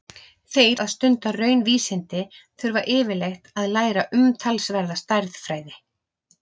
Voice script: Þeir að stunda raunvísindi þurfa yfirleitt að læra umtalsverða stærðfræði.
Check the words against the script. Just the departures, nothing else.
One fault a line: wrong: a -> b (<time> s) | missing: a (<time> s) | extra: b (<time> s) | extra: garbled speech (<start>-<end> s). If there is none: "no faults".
no faults